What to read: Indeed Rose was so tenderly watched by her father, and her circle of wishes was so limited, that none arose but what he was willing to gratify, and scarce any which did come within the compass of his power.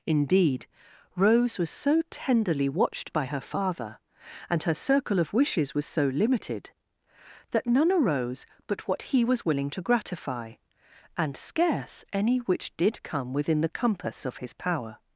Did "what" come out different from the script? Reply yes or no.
no